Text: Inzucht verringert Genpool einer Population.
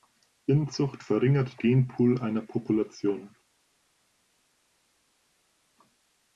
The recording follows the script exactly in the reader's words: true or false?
true